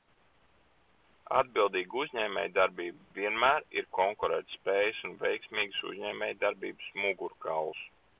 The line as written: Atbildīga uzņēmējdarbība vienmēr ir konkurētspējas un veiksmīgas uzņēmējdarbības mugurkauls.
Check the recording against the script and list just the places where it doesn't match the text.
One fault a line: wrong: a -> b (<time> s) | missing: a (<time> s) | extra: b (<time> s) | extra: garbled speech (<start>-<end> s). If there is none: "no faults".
no faults